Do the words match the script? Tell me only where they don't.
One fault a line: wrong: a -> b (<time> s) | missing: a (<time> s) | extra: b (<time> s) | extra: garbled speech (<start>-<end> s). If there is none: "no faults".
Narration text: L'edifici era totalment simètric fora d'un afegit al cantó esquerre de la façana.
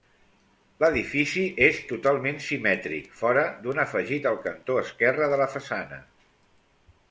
wrong: era -> és (1.6 s)